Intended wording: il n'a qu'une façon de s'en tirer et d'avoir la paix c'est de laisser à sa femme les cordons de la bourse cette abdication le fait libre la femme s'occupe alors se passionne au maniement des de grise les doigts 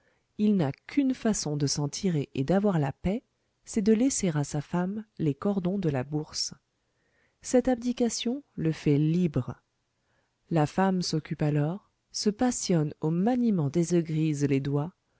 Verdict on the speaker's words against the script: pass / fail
pass